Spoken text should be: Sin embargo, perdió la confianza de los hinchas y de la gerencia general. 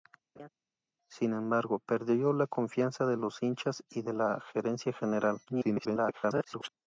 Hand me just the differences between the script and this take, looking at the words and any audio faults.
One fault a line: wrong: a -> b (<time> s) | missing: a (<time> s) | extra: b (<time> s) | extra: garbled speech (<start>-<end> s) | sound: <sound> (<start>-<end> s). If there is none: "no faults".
sound: laugh (0.4-0.5 s)
extra: garbled speech (5.5-6.7 s)